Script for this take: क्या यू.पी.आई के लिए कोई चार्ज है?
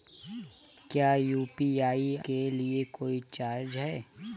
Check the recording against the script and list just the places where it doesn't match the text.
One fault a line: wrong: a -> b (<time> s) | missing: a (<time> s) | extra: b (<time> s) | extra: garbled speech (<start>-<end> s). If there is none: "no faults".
no faults